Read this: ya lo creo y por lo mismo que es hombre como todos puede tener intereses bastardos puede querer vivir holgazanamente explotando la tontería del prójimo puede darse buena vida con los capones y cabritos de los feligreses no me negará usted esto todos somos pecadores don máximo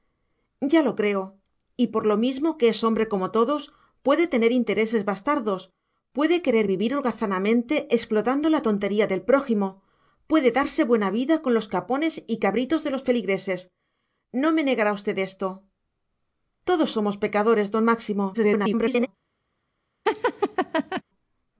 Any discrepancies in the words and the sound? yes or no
yes